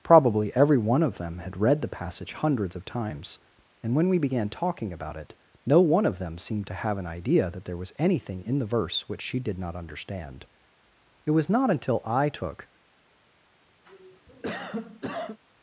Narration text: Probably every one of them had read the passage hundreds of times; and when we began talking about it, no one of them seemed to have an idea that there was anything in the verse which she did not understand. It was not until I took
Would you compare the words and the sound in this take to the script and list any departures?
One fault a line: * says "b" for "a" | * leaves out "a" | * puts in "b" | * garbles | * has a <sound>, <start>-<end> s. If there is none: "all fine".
* has a cough, 13.8-15.4 s